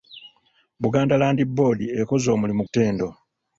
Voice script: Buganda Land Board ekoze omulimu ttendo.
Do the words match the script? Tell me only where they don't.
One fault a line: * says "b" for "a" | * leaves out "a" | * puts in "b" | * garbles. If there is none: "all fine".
all fine